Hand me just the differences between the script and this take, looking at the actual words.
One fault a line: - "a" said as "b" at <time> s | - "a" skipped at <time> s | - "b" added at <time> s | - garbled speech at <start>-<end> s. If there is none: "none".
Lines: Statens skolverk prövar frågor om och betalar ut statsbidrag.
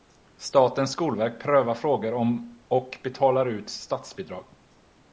none